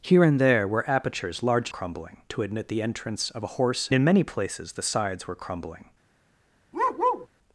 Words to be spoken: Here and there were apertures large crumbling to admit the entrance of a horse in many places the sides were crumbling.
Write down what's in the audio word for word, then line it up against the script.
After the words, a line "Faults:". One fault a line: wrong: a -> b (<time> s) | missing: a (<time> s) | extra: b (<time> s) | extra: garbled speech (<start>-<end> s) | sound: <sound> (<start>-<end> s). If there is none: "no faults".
Here and there were apertures large crumbling to admit the entrance of a horse in many places the sides were crumbling.
Faults:
sound: bark (6.7-7.3 s)